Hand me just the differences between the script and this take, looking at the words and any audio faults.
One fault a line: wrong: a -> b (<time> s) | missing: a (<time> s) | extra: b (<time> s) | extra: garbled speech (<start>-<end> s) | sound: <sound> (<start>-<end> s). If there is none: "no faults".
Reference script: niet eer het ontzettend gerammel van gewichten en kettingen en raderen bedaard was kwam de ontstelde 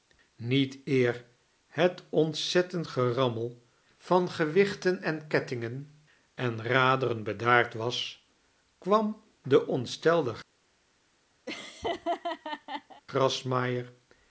sound: laugh (11.5-13.0 s)